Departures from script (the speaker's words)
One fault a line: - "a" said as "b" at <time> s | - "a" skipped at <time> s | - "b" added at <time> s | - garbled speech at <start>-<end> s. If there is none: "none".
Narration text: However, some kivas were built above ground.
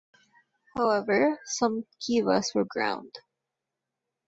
- "built above" skipped at 2.6 s